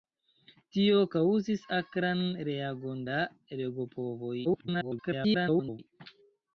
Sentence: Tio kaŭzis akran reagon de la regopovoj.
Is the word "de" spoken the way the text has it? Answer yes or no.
no